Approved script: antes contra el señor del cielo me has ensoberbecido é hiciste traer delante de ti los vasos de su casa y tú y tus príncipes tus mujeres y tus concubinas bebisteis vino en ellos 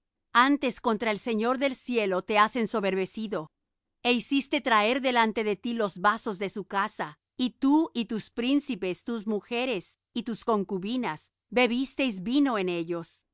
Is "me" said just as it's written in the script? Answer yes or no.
no